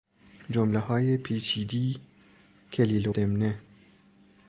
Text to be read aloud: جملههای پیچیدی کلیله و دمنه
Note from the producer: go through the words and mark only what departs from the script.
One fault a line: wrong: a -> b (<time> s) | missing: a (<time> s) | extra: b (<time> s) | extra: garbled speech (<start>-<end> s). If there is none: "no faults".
missing: و (3.1 s)